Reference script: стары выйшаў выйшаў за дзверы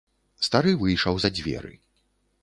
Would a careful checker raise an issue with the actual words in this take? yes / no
yes